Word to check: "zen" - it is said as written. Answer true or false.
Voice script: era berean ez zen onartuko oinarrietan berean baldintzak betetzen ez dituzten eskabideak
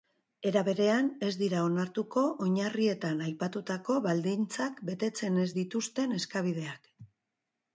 false